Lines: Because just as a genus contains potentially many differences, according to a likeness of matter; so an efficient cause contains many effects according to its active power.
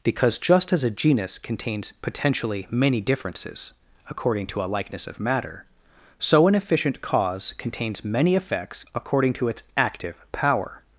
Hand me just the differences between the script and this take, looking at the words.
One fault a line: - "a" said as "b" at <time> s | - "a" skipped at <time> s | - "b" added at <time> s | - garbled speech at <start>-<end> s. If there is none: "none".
none